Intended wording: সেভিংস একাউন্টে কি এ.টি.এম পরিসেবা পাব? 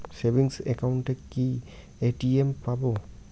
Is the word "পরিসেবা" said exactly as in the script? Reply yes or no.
no